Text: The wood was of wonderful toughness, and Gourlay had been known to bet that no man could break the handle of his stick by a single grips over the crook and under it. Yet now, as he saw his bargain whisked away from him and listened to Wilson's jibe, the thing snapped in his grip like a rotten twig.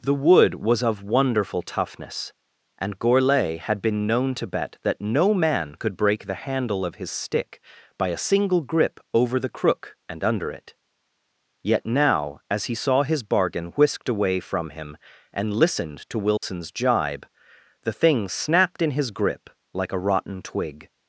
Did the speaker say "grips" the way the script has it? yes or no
no